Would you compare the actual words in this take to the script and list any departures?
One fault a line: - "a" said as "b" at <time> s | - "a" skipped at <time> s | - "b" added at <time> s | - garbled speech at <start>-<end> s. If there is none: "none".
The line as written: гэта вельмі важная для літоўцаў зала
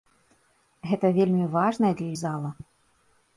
- "літоўцаў" skipped at 2.1 s